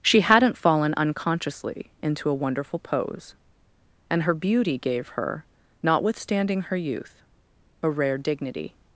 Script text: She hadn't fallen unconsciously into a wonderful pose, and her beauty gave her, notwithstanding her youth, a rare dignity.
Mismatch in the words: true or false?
false